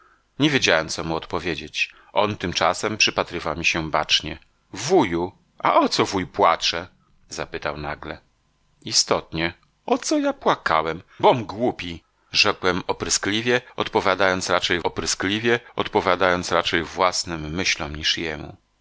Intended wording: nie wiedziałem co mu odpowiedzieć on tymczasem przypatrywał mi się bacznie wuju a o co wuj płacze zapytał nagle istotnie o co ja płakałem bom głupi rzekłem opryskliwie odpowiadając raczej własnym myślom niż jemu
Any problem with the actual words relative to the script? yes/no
yes